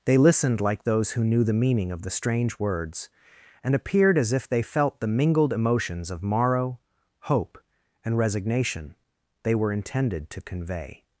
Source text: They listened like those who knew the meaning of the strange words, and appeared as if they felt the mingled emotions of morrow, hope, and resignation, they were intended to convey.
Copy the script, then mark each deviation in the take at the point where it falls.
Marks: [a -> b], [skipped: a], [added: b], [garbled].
They listened like those who knew the meaning of the strange words, and appeared as if they felt the mingled emotions of morrow, hope, and resignation, they were intended to convey.